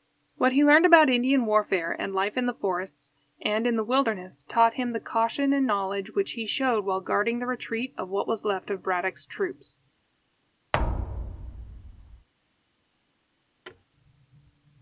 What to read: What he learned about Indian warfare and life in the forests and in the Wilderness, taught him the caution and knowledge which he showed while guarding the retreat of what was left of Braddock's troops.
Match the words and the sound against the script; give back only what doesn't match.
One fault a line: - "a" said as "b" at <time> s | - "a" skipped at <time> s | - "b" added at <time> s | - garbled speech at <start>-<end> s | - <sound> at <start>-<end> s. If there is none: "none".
- thud at 10.7-12.3 s
- thud at 13.6-13.8 s